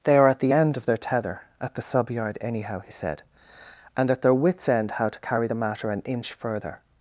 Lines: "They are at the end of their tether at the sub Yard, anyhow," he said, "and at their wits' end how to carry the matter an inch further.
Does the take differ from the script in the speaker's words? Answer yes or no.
no